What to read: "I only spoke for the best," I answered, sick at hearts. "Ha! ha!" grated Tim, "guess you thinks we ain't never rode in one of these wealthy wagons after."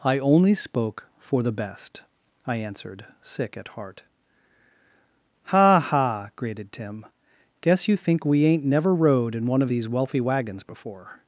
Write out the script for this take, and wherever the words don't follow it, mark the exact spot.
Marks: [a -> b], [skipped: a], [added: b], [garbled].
"I only spoke for the best," I answered, sick at [hearts. -> heart] "Ha! ha!" grated Tim, "guess you [thinks -> think] we ain't never rode in one of these wealthy wagons [after." -> before]